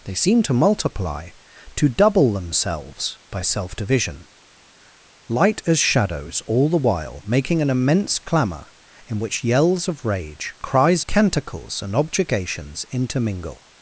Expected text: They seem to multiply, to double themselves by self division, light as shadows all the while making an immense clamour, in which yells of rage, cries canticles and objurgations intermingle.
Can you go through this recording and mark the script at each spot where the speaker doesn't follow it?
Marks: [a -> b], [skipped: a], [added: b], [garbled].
They seem to multiply, to double themselves by self division, light as shadows all the while making an immense clamour, in which yells of rage, cries canticles and objurgations intermingle.